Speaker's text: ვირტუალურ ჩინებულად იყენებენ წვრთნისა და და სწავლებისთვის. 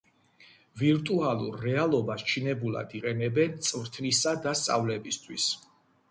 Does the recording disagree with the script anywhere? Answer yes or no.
yes